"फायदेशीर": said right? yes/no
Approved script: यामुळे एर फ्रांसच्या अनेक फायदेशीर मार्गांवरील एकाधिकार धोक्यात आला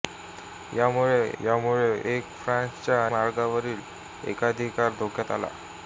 no